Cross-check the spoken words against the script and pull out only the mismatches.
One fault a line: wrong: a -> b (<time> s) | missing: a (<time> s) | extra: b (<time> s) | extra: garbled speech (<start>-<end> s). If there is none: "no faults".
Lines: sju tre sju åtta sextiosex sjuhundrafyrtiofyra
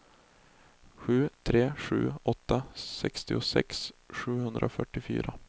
no faults